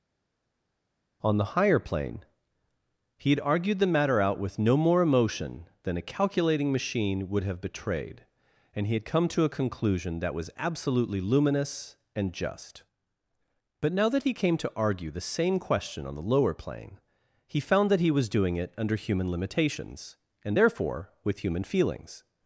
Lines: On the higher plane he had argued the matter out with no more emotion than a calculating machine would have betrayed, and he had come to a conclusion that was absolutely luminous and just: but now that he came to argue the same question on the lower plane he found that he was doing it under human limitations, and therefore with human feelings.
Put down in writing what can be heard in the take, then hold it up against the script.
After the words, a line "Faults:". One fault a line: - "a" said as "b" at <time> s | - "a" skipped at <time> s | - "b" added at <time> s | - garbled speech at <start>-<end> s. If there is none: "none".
On the higher plane he had argued the matter out with no more emotion than a calculating machine would have betrayed, and he had come to a conclusion that was absolutely luminous and just: but now that he came to argue the same question on the lower plane he found that he was doing it under human limitations, and therefore with human feelings.
Faults:
none